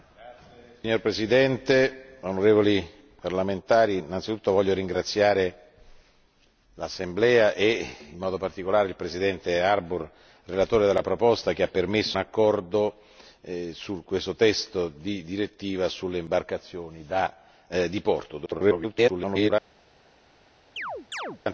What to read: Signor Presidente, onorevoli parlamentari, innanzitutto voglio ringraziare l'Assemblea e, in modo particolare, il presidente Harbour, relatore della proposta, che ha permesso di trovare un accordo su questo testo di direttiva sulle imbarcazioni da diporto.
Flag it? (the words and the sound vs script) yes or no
yes